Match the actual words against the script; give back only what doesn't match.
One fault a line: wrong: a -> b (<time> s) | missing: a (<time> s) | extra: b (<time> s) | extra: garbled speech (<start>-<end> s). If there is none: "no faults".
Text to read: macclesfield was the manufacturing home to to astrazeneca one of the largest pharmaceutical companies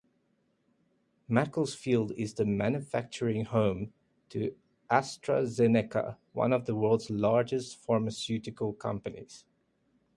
wrong: was -> is (2.1 s)
missing: to (4.5 s)
extra: world's (6.8 s)